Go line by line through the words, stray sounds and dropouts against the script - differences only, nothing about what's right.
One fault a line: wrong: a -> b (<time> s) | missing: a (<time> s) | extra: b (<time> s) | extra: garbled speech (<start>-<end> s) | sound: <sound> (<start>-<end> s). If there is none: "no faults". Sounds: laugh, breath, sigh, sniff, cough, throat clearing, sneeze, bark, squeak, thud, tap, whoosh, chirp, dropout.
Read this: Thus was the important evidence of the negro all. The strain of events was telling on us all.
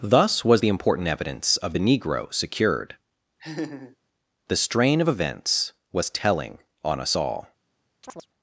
wrong: all -> secured (2.3 s)
sound: laugh (3.4-4.0 s)
sound: chirp (8.0-8.3 s)